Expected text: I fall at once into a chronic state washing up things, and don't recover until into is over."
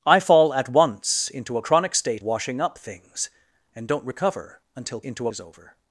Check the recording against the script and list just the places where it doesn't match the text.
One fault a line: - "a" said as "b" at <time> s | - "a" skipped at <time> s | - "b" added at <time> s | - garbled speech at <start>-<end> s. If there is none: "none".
none